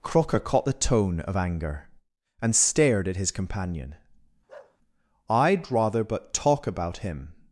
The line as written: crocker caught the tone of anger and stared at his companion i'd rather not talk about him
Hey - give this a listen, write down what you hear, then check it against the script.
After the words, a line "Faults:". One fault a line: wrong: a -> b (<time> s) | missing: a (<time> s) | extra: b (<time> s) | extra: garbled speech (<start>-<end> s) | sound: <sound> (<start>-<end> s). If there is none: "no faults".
crocker caught the tone of anger and stared at his companion i'd rather but talk about him
Faults:
sound: bark (4.5-4.8 s)
wrong: not -> but (6.0 s)